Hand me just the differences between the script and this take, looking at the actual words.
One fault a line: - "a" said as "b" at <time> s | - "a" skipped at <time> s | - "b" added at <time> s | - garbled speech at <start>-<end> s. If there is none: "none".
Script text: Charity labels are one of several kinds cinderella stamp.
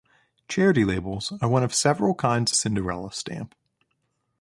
none